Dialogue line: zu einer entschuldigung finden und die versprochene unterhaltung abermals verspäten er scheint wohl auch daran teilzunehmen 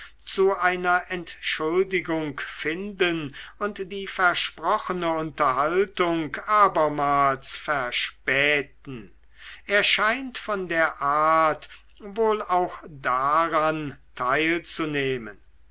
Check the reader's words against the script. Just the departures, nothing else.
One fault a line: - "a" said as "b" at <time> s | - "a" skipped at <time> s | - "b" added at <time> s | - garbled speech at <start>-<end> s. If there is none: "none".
- "von der art" added at 10.4 s